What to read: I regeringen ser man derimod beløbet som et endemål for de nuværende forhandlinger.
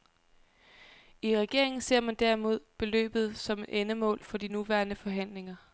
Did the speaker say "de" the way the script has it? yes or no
yes